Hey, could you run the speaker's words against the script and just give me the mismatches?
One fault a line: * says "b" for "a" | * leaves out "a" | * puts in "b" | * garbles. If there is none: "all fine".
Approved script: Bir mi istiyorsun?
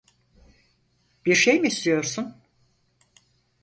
* puts in "şey"